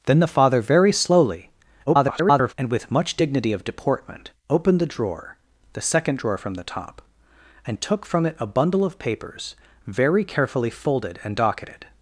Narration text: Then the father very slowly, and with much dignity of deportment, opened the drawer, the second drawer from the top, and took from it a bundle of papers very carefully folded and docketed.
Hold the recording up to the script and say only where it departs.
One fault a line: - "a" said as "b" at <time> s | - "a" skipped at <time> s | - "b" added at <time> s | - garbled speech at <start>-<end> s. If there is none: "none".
- garbled speech at 1.9-2.5 s